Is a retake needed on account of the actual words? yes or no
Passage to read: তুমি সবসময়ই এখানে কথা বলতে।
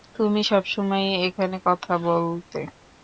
no